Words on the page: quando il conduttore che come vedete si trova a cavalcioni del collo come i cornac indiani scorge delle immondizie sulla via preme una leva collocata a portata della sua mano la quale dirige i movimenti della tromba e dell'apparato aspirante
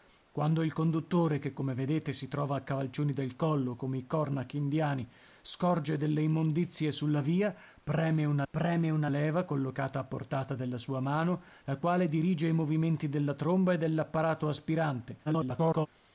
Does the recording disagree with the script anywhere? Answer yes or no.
yes